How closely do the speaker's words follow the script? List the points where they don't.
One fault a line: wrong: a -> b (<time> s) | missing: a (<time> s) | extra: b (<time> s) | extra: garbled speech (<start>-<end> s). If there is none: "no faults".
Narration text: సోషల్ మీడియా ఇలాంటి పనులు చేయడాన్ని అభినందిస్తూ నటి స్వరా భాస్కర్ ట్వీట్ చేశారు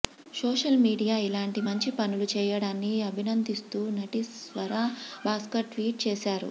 extra: మంచి (1.7 s)